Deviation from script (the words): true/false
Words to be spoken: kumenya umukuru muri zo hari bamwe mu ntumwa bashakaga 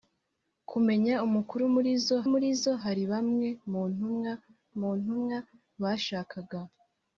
true